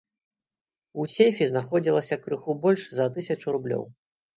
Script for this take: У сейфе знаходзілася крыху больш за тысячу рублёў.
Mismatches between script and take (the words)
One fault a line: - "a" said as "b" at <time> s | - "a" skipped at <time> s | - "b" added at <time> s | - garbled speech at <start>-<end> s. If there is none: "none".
none